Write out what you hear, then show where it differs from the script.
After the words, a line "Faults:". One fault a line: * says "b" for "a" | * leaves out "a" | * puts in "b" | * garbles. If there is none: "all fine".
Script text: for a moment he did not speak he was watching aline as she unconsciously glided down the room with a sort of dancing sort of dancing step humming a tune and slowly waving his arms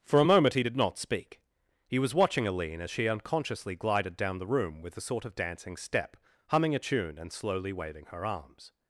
for a moment he did not speak he was watching aline as she unconsciously glided down the room with a sort of dancing step humming a tune and slowly waving her arms
Faults:
* leaves out "sort of dancing"
* says "her" for "his"